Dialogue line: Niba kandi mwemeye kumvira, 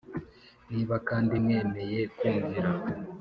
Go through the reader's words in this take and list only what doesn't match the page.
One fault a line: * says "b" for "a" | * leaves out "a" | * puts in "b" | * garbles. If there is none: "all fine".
all fine